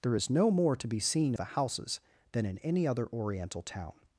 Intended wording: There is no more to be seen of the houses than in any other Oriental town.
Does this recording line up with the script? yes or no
no